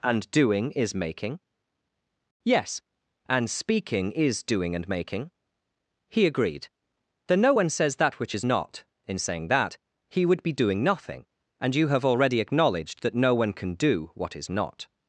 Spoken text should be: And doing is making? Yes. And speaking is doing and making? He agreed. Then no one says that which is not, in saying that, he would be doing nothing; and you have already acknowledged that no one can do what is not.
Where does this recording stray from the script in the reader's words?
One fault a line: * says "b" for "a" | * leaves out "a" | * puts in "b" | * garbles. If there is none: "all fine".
all fine